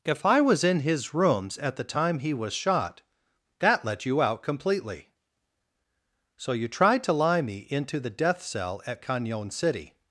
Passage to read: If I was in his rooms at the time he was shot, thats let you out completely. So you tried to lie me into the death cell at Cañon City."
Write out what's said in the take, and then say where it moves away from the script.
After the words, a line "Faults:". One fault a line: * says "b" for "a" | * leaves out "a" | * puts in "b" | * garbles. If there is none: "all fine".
If I was in his rooms at the time he was shot, that let you out completely. So you tried to lie me into the death cell at Cañon City."
Faults:
* says "that" for "thats"